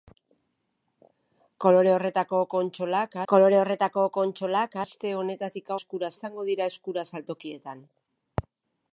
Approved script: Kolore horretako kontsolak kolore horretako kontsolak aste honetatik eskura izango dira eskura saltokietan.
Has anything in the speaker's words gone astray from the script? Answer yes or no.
no